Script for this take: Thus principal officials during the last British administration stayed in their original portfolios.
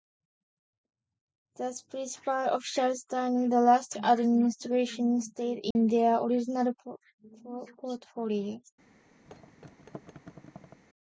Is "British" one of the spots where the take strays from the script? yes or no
yes